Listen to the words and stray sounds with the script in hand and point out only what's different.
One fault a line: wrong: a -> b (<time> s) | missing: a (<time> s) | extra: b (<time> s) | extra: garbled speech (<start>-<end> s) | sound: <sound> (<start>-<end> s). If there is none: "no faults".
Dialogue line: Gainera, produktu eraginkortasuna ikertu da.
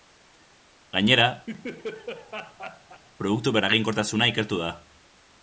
sound: laugh (1.5-3.0 s)